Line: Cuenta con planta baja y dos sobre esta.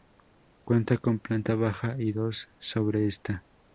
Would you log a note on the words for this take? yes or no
no